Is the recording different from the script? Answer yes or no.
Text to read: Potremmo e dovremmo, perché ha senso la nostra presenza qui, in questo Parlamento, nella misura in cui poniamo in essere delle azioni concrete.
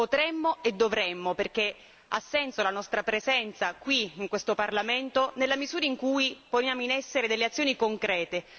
no